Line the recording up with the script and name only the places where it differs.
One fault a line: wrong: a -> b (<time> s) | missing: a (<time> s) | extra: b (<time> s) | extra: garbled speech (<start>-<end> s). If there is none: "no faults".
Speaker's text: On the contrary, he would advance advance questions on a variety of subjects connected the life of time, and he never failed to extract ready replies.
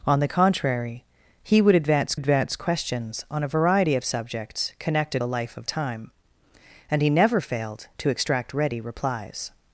no faults